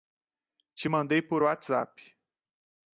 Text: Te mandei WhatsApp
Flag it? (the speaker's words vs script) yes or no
yes